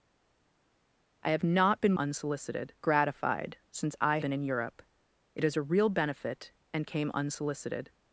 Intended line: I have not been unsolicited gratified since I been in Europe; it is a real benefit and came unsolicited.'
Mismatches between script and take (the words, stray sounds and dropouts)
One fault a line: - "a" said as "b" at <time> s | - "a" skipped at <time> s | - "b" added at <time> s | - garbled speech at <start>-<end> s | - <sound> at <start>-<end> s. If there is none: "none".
none